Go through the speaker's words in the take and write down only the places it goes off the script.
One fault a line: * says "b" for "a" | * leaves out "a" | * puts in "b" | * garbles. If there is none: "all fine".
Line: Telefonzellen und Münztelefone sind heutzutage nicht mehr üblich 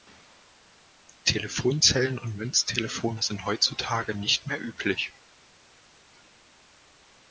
all fine